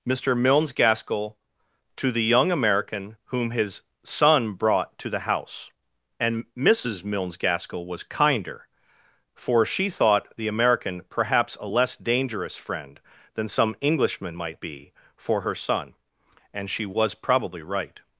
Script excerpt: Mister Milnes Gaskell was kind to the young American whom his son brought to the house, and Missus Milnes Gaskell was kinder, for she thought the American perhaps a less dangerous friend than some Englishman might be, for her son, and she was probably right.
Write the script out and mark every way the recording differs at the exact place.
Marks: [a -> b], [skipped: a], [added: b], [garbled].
Mister Milnes Gaskell [skipped: was kind] to the young American whom his son brought to the house, and Missus Milnes Gaskell was kinder, for she thought the American perhaps a less dangerous friend than some Englishman might be, for her son, and she was probably right.